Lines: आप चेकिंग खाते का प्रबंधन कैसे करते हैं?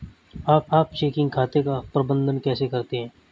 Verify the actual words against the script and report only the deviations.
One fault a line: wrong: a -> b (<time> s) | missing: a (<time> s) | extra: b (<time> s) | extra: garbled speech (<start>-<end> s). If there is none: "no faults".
extra: आप (0.7 s)